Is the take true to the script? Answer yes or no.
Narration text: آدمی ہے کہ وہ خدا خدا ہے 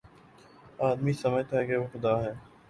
no